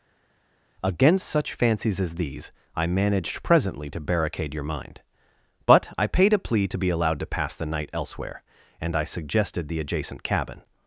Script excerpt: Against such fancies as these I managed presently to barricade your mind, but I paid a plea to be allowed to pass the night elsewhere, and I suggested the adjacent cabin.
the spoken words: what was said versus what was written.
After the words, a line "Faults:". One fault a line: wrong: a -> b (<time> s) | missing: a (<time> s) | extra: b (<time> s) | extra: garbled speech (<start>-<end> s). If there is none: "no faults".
Against such fancies as these I managed presently to barricade your mind, but I paid a plea to be allowed to pass the night elsewhere, and I suggested the adjacent cabin.
Faults:
no faults